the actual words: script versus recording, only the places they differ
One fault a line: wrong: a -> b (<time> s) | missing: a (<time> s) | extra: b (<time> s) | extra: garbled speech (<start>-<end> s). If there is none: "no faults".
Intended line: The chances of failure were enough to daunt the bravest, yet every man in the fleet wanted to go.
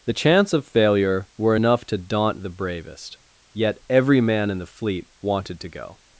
wrong: chances -> chance (0.1 s)